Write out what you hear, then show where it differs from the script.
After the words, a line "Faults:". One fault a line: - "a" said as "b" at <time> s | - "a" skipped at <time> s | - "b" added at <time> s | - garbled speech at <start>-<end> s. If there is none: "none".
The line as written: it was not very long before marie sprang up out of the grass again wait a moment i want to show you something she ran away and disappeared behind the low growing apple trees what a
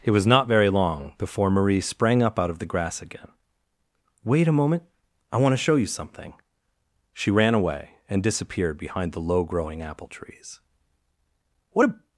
it was not very long before marie sprang up out of the grass again wait a moment i want to show you something she ran away and disappeared behind the low growing apple trees what a
Faults:
none